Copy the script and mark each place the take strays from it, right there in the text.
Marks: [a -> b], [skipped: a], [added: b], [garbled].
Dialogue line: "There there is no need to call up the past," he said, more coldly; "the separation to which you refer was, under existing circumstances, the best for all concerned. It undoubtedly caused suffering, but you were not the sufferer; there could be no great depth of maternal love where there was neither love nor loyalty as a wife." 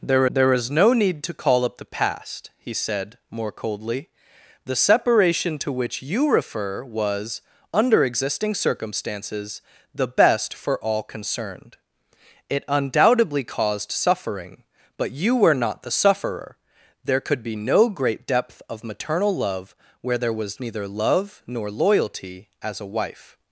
"There there is no need to call up the past," he said, more coldly; "the separation to which you refer was, under existing circumstances, the best for all concerned. It undoubtedly caused suffering, but you were not the sufferer; there could be no great depth of maternal love where there was neither love nor loyalty as a wife."